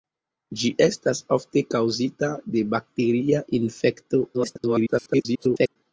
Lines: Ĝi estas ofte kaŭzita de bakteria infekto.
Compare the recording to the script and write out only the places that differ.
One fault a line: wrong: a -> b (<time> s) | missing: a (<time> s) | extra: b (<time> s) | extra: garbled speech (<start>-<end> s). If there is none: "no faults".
extra: garbled speech (4.3-5.8 s)